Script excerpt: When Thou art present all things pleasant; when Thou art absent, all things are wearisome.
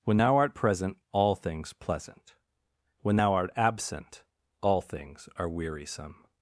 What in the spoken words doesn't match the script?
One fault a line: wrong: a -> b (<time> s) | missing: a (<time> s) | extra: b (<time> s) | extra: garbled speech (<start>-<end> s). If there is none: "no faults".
no faults